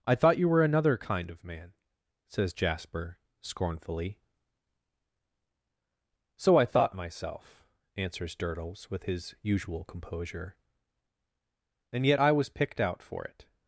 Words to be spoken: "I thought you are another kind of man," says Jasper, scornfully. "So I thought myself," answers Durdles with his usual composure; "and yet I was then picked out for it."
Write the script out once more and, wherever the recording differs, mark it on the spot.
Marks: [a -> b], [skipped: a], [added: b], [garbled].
"I thought you [are -> were] another kind of man," says Jasper, scornfully. "So I thought myself," answers Durdles with his usual composure; "and yet I was [skipped: then] picked out for it."